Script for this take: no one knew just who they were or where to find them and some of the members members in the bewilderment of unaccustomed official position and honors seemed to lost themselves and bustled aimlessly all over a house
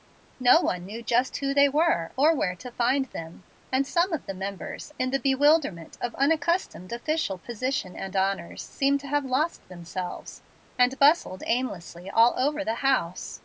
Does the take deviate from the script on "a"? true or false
true